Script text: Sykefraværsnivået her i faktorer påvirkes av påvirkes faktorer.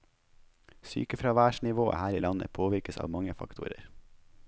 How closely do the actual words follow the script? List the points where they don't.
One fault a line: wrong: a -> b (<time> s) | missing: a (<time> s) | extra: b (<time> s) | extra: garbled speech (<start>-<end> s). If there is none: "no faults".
wrong: faktorer -> landet (2.2 s)
wrong: påvirkes -> mange (3.1 s)